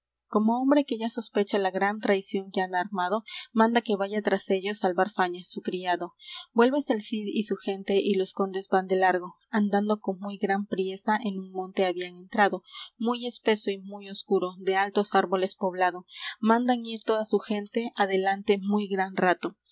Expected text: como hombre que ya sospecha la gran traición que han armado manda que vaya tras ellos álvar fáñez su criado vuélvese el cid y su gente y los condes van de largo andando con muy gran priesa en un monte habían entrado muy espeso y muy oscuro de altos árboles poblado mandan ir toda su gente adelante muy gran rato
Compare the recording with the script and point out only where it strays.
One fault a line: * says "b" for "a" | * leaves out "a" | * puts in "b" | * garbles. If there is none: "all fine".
all fine